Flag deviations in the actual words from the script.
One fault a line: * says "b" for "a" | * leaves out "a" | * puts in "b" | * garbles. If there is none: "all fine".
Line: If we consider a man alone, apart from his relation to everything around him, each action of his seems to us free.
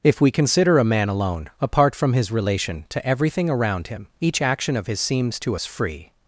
all fine